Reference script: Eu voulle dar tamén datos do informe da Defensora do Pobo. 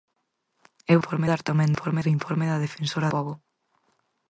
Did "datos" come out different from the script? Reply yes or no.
yes